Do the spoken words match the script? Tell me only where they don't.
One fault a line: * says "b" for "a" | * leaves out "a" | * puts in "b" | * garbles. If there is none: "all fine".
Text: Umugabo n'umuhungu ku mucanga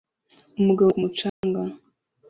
* leaves out "n'umuhungu"